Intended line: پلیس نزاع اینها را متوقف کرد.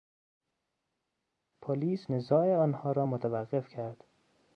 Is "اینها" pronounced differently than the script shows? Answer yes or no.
yes